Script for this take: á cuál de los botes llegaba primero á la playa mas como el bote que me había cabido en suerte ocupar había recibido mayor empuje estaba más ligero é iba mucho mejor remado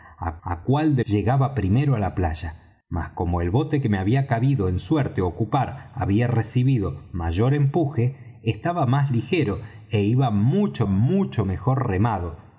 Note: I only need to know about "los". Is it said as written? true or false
false